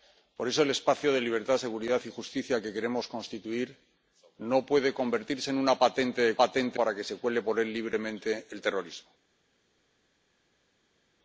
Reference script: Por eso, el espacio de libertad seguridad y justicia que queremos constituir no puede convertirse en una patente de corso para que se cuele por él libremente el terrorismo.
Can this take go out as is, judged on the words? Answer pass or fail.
fail